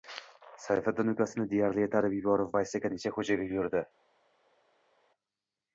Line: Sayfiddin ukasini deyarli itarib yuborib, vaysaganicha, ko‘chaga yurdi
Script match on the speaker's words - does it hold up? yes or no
yes